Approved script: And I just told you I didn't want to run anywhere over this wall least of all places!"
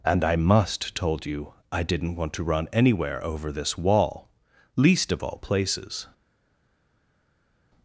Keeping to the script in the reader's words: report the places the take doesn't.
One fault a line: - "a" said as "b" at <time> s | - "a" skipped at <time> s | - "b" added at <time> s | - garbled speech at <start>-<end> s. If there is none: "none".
- "just" said as "must" at 0.3 s